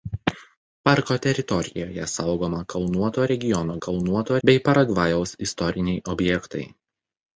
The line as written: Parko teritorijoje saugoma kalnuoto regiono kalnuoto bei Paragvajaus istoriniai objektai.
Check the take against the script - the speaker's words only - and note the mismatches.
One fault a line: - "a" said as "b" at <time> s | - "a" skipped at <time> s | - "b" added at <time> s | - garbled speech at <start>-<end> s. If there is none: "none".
none